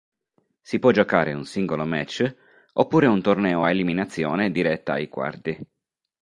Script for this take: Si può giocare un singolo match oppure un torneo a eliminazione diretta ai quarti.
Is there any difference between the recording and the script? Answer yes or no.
no